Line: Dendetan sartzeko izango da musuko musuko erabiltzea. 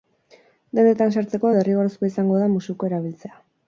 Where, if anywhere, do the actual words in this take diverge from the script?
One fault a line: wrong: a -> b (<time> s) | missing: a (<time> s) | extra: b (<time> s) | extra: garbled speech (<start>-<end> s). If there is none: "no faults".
extra: derrigorrezkoa (1.6 s)
missing: musuko (2.9 s)